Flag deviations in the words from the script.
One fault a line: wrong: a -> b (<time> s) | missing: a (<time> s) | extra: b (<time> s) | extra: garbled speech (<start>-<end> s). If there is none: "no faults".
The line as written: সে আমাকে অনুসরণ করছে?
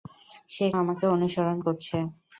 no faults